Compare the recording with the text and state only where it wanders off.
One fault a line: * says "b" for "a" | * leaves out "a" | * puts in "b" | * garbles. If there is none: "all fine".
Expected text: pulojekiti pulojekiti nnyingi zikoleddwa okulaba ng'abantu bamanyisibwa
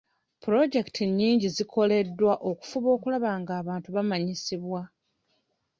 * leaves out "pulojekiti"
* puts in "okufuba"